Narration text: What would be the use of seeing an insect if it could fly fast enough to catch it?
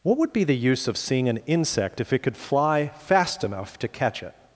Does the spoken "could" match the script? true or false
true